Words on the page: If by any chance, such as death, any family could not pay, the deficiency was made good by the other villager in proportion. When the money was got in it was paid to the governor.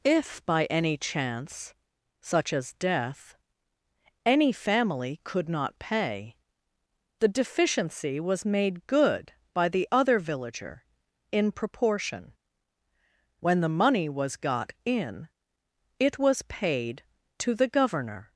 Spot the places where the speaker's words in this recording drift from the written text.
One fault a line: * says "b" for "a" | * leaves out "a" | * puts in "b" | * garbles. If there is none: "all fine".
all fine